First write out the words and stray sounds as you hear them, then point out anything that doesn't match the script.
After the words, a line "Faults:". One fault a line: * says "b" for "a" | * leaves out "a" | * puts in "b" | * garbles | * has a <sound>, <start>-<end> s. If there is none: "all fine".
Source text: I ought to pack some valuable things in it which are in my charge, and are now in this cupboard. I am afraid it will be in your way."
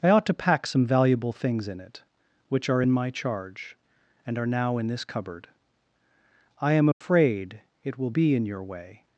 I ought to pack some valuable things in it which are in my charge, and are now in this cupboard. I am afraid it will be in your way."
Faults:
* has a dropout, 6.9-7.0 s